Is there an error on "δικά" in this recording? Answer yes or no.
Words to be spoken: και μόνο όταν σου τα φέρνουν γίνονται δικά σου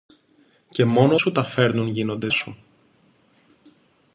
yes